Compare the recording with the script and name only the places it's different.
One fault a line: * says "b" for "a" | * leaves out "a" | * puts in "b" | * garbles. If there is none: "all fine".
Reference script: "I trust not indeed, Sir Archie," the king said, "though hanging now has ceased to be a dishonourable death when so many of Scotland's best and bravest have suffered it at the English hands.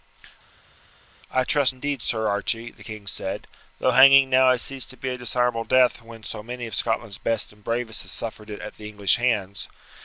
* leaves out "not"